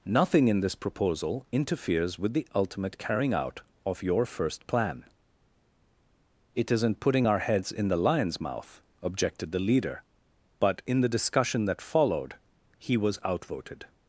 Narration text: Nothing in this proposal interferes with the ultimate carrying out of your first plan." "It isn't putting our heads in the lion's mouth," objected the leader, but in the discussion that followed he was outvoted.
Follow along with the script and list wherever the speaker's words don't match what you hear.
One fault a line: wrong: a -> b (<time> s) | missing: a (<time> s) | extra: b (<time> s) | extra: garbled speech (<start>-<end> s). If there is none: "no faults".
no faults